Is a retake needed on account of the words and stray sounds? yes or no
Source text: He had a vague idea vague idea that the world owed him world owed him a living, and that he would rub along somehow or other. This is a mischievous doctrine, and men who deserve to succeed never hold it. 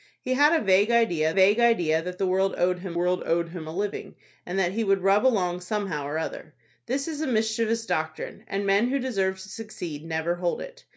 no